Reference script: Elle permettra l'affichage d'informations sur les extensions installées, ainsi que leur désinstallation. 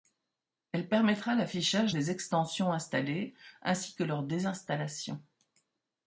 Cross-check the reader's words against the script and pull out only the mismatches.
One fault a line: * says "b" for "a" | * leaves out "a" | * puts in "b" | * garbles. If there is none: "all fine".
* leaves out "d'informations sur"